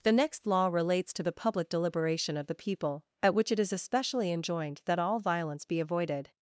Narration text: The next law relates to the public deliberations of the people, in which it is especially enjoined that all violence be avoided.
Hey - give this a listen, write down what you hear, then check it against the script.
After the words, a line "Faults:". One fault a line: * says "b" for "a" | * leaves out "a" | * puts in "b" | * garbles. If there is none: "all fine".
The next law relates to the public deliberation of the people, at which it is especially enjoined that all violence be avoided.
Faults:
* says "deliberation" for "deliberations"
* says "at" for "in"